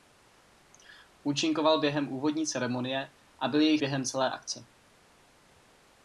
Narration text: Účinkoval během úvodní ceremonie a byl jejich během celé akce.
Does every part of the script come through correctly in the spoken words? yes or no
yes